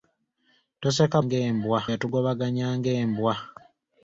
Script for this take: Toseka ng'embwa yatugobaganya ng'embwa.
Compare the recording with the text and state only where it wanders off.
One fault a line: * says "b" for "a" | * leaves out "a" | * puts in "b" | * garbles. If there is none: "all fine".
all fine